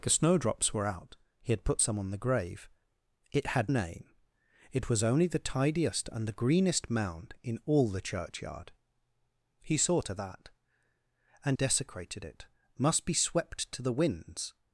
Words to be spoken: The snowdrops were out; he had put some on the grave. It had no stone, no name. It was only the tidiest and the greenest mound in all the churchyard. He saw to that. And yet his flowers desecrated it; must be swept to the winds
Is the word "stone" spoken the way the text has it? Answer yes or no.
no